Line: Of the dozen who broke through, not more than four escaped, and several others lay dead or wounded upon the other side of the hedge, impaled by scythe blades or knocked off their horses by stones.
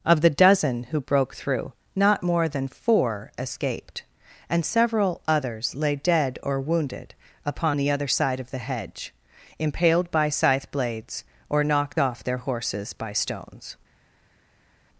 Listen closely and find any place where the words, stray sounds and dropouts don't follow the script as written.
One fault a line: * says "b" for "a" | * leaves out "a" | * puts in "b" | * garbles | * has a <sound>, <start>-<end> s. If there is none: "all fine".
all fine